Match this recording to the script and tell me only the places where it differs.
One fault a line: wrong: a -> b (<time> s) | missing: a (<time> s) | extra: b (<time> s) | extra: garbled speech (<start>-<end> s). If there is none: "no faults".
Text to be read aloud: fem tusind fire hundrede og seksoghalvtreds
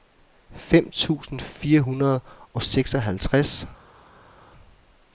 no faults